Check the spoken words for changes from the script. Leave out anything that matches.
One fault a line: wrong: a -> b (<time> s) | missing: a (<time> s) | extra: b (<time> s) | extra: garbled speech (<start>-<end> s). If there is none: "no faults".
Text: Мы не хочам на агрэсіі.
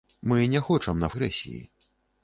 no faults